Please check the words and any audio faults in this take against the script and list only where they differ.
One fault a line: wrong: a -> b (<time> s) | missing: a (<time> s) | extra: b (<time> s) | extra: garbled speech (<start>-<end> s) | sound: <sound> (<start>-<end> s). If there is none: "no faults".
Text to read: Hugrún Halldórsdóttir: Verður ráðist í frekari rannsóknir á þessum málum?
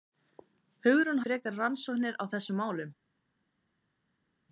missing: Halldórsdóttir Verður ráðist (1.2 s)